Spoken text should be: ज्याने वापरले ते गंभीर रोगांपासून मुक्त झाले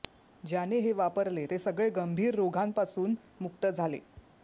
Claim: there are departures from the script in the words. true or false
true